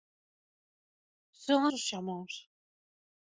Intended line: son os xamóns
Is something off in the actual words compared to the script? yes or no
no